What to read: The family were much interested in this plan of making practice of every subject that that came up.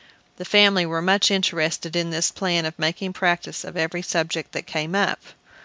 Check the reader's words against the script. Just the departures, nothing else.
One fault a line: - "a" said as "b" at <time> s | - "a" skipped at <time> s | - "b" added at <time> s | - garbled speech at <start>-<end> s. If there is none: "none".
- "that" skipped at 4.7 s